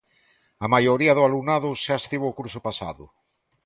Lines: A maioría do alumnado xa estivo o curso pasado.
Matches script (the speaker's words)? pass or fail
pass